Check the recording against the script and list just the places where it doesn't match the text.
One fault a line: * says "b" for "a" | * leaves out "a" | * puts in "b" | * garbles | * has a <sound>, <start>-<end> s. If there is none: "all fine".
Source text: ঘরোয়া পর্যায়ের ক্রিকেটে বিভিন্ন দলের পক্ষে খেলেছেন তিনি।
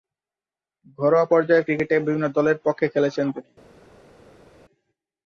all fine